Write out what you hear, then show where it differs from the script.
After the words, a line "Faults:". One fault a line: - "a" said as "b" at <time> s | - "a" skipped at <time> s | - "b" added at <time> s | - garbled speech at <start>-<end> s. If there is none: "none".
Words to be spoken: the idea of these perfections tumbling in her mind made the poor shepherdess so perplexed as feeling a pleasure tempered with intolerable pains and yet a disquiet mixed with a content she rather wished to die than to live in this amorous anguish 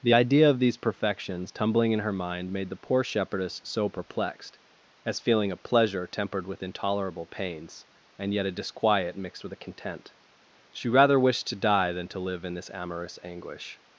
the idea of these perfections tumbling in her mind made the poor shepherdess so perplexed as feeling a pleasure tempered with intolerable pains and yet a disquiet mixed with a content she rather wished to die than to live in this amorous anguish
Faults:
none